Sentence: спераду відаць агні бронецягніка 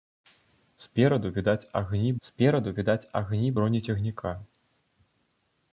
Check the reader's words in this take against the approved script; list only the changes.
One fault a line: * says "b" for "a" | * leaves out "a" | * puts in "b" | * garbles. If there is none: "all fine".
* puts in "спераду відаць агні"